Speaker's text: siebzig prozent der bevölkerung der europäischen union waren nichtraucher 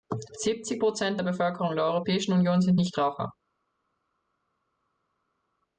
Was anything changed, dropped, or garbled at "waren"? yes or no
yes